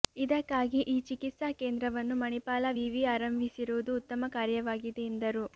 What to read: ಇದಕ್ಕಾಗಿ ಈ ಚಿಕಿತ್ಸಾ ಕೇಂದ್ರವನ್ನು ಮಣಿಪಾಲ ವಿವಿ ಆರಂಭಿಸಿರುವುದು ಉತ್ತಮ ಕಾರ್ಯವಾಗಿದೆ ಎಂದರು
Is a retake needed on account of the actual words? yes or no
no